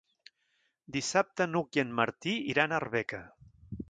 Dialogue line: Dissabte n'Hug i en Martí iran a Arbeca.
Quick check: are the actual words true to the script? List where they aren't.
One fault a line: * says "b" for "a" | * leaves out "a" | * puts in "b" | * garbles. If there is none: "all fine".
all fine